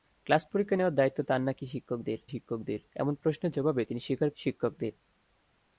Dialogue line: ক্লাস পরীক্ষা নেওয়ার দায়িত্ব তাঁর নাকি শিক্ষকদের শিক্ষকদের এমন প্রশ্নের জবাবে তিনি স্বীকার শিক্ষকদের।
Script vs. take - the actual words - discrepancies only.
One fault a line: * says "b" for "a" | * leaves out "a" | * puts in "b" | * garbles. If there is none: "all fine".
all fine